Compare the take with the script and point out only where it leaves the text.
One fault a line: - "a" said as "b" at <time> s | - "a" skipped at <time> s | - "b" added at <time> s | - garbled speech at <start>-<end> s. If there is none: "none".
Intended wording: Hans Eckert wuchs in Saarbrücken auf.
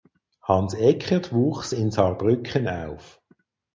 none